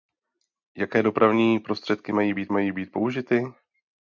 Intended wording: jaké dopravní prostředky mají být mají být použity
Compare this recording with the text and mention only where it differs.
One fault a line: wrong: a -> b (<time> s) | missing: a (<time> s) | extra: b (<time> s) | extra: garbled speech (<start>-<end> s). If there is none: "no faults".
no faults